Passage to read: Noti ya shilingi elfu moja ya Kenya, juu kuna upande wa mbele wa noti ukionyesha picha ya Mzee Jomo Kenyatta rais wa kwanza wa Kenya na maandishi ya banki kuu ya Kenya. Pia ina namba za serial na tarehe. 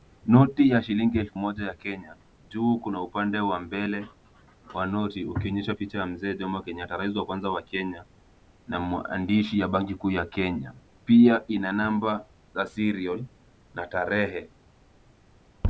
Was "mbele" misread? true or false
false